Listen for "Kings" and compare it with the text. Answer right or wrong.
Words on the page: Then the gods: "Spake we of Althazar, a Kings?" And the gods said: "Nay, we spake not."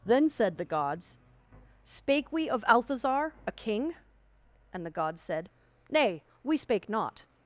wrong